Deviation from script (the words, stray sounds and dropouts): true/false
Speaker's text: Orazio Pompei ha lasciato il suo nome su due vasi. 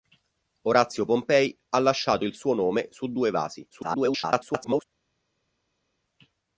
true